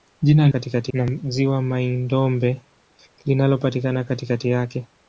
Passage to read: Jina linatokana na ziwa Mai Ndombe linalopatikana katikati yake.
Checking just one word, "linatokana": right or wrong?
wrong